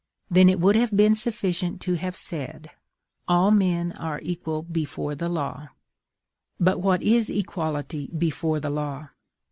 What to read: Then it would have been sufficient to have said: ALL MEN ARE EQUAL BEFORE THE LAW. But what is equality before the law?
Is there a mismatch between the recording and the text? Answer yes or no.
no